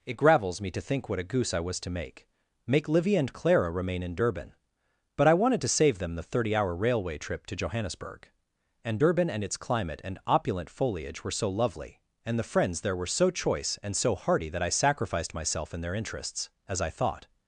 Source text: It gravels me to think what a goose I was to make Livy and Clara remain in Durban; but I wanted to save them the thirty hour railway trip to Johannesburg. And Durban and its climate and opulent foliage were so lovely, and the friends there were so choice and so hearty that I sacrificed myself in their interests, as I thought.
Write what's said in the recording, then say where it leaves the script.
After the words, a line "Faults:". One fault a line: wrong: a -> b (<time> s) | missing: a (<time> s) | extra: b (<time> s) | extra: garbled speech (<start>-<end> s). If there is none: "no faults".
It gravels me to think what a goose I was to make make Livy and Clara remain in Durban; but I wanted to save them the thirty hour railway trip to Johannesburg. And Durban and its climate and opulent foliage were so lovely, and the friends there were so choice and so hearty that I sacrificed myself in their interests, as I thought.
Faults:
extra: make (2.6 s)